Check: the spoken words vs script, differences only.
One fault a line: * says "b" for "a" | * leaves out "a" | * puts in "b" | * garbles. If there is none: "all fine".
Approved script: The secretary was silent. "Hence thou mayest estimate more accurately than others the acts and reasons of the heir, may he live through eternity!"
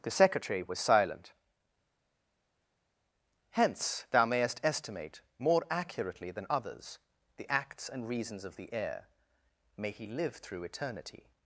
all fine